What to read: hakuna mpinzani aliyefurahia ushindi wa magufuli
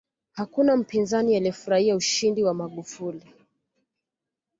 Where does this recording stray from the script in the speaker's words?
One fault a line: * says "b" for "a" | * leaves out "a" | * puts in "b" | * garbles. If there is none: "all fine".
all fine